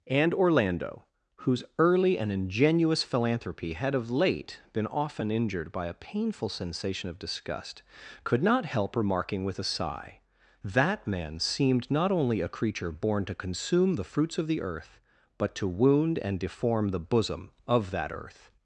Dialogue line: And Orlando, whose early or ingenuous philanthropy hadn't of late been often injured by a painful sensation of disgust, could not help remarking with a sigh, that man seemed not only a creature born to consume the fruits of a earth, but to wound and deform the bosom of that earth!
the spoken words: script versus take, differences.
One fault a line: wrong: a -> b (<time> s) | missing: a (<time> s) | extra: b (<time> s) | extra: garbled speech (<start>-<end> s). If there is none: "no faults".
wrong: or -> and (2.2 s)
wrong: hadn't -> had (3.7 s)
wrong: a -> the (14.5 s)